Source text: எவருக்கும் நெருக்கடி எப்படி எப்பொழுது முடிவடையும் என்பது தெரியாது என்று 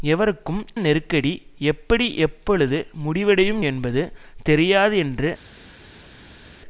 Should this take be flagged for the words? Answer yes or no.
no